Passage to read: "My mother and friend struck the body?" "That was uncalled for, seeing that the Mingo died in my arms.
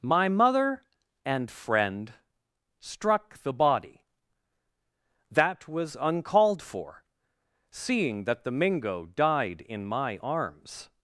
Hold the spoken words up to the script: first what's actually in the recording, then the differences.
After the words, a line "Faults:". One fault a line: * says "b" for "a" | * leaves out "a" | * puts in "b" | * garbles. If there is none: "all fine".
"My mother and friend struck the body?" "That was uncalled for, seeing that the Mingo died in my arms.
Faults:
all fine